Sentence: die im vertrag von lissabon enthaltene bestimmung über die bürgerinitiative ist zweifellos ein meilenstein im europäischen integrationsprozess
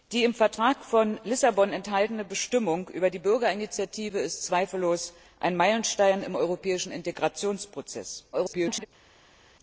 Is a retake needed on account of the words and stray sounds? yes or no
yes